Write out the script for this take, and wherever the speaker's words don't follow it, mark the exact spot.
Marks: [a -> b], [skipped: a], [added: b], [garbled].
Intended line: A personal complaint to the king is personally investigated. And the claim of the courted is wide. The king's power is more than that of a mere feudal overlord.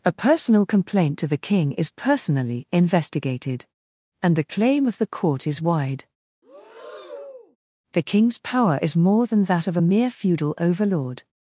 A personal complaint to the king is personally investigated. And the claim of the [courted -> court] is wide. The king's power is more than that of a mere feudal overlord.